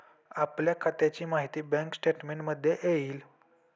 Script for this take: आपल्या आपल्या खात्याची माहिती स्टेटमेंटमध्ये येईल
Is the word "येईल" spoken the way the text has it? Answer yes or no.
yes